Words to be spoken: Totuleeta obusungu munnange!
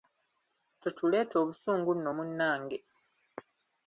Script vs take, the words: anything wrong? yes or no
yes